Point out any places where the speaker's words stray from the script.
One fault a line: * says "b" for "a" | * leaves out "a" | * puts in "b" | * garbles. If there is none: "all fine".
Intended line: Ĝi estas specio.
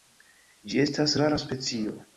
* puts in "rara"